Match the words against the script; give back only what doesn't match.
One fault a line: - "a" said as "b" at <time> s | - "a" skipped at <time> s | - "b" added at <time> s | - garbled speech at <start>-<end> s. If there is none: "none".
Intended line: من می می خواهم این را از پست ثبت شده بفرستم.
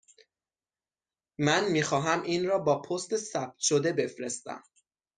- "می" skipped at 1.8 s
- "از" said as "با" at 2.6 s